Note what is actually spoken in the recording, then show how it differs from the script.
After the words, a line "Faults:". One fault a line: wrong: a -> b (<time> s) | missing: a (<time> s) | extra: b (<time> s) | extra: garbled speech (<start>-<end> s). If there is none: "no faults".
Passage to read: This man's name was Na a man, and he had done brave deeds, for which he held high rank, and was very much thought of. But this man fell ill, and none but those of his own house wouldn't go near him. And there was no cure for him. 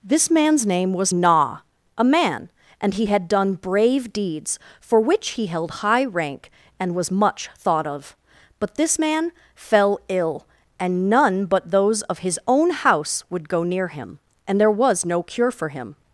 This man's name was Na a man, and he had done brave deeds, for which he held high rank, and was much thought of. But this man fell ill, and none but those of his own house would go near him. And there was no cure for him.
Faults:
missing: very (7.1 s)
wrong: wouldn't -> would (13.3 s)